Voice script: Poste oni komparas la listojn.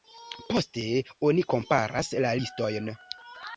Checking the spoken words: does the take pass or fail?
pass